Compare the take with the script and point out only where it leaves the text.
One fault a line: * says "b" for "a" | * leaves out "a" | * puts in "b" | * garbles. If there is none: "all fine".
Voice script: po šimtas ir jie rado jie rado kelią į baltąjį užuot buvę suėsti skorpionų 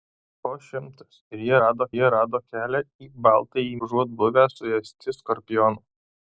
all fine